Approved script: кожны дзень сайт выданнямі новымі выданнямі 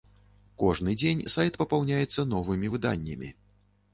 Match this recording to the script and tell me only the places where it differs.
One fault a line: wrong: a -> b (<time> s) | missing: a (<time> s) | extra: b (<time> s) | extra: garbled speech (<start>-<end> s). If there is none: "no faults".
wrong: выданнямі -> папаўняецца (1.6 s)